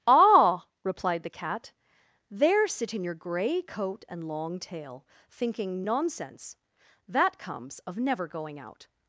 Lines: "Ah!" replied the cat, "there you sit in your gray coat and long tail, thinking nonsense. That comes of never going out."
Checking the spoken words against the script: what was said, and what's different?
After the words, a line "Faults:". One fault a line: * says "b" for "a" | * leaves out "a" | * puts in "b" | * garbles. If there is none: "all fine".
"Ah!" replied the cat, "there sit in your gray coat and long tail, thinking nonsense. That comes of never going out."
Faults:
* leaves out "you"